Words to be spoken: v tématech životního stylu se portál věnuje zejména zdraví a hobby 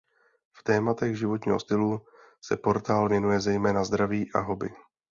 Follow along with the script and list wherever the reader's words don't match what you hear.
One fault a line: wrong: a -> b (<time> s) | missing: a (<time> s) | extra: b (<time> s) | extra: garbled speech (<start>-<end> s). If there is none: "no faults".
no faults